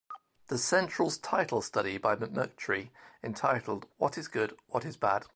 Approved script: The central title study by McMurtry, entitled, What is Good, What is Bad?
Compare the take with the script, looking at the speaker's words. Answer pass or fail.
pass